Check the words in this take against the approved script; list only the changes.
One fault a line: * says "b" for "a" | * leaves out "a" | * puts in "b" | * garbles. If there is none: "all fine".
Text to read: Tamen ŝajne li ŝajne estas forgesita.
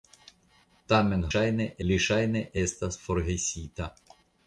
all fine